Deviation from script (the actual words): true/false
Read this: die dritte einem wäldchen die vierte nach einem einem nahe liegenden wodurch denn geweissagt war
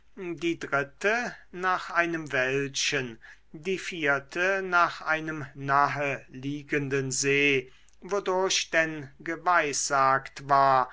true